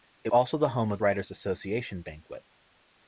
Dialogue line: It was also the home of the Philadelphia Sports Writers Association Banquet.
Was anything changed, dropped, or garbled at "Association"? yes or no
no